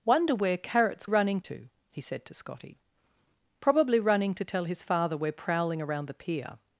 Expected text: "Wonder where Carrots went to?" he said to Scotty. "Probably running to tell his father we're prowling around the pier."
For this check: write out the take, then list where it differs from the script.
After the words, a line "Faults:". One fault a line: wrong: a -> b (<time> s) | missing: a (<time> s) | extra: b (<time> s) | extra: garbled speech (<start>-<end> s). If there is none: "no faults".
"Wonder where Carrots running to?" he said to Scotty. "Probably running to tell his father we're prowling around the pier."
Faults:
wrong: went -> running (1.0 s)